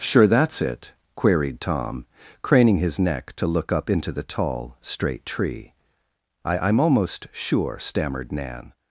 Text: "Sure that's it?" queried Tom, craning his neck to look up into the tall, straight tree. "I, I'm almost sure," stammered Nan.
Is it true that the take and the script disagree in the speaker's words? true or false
false